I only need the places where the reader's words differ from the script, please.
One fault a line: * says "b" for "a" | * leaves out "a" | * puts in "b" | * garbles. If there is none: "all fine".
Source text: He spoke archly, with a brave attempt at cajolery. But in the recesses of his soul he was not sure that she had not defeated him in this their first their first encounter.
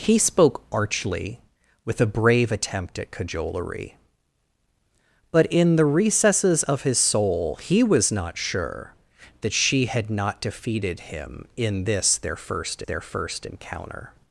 all fine